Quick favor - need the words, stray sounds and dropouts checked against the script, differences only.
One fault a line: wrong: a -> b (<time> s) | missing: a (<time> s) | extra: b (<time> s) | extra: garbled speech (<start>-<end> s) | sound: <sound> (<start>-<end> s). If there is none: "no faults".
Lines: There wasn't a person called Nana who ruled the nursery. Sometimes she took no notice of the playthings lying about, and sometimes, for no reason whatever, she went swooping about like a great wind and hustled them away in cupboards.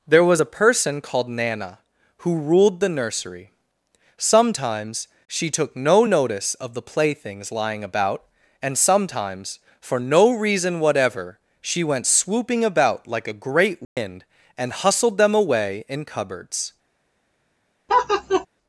wrong: wasn't -> was (0.2 s)
sound: dropout (13.8-14.0 s)
sound: laugh (17.9-18.5 s)